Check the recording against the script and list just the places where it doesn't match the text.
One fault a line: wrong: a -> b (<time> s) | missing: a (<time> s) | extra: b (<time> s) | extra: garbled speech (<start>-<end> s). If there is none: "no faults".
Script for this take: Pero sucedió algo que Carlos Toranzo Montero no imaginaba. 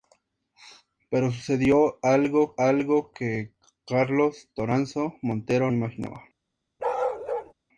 extra: algo (2.6 s)
missing: no (5.7 s)